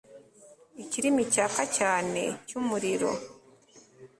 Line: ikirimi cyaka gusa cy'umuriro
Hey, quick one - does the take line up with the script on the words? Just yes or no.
no